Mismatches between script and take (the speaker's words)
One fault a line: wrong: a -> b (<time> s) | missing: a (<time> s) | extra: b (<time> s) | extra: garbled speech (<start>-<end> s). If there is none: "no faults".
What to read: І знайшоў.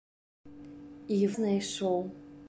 no faults